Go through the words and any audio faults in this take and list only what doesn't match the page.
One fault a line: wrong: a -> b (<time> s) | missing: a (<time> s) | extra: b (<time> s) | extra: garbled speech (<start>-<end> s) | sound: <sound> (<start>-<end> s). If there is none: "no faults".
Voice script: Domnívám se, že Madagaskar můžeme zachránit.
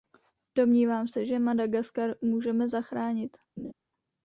sound: laugh (3.6-3.7 s)